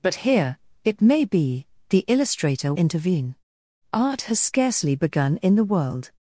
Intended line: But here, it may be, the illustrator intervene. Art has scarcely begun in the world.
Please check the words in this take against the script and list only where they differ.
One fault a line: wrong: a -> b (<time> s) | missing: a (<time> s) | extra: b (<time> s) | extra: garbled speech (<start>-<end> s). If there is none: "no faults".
no faults